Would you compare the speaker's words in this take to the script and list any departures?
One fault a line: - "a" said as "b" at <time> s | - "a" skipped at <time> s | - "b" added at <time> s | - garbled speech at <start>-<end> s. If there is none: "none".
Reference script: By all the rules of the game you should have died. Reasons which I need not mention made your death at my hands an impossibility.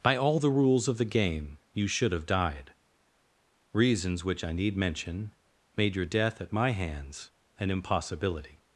- "not" skipped at 4.8 s